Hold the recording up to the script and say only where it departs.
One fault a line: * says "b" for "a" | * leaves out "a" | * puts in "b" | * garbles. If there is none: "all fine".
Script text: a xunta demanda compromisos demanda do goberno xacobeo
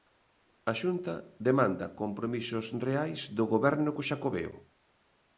* says "reais" for "demanda"
* puts in "co"